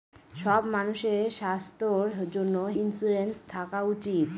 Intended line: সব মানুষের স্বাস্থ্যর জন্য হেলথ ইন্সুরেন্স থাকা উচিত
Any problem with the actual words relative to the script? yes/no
yes